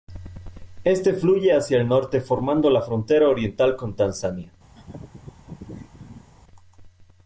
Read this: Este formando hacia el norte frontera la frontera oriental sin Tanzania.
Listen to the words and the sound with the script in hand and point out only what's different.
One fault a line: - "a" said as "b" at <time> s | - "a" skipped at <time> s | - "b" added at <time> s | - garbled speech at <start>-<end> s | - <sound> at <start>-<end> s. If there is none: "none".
- "formando" said as "fluye" at 1.1 s
- "frontera" said as "formando" at 2.2 s
- "sin" said as "con" at 3.8 s
- laugh at 4.7-6.3 s